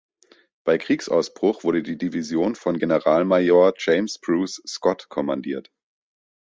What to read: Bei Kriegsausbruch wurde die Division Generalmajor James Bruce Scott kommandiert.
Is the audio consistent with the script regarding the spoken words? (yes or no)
no